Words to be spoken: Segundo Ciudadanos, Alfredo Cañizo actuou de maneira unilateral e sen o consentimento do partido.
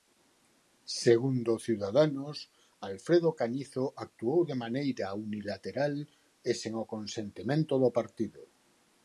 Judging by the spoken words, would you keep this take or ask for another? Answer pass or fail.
pass